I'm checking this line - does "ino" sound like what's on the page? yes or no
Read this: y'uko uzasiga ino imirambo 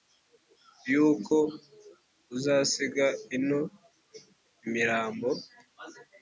yes